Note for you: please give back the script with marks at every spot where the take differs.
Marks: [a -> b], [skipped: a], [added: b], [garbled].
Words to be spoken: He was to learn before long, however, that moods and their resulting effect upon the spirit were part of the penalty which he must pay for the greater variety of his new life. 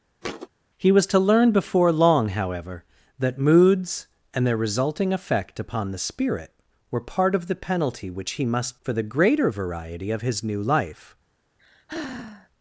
He was to learn before long, however, that moods and their resulting effect upon the spirit were part of the penalty which he must [skipped: pay] for the greater variety of his new life.